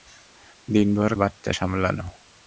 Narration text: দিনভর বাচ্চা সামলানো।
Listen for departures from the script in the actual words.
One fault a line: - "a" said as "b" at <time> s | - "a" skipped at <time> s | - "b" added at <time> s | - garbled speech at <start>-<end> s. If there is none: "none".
none